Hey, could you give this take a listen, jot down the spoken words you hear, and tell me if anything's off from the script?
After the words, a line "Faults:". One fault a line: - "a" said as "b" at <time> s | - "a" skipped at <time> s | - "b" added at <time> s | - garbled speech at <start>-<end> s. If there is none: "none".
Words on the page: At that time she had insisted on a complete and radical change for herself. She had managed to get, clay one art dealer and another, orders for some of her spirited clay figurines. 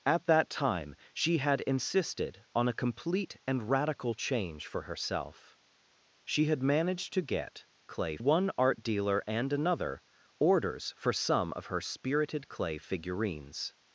At that time she had insisted on a complete and radical change for herself. She had managed to get, clay one art dealer and another, orders for some of her spirited clay figurines.
Faults:
none